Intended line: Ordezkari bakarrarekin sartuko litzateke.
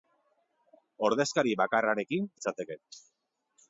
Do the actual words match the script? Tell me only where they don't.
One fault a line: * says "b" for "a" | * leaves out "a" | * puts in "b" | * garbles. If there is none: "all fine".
* leaves out "sartuko"